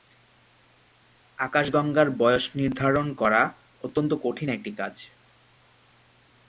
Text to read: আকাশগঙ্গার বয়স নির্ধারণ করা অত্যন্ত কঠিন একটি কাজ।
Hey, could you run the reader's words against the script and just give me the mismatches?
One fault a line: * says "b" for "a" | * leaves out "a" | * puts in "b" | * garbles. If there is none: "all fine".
all fine